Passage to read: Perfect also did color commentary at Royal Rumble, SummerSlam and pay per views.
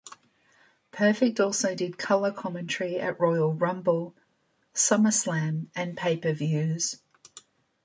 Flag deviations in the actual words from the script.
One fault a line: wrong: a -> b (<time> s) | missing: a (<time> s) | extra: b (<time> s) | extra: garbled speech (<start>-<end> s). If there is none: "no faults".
no faults